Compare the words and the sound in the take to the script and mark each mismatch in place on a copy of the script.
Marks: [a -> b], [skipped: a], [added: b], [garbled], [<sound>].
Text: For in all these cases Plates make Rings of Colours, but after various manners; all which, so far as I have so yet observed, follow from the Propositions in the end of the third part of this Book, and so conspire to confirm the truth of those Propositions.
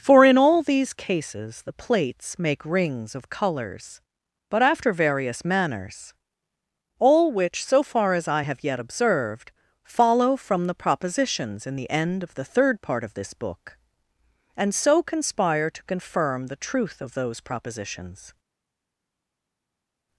For in all these cases [added: the] Plates make Rings of Colours, but after various manners; all which, so far as I have [skipped: so] yet observed, follow from the Propositions in the end of the third part of this Book, and so conspire to confirm the truth of those Propositions.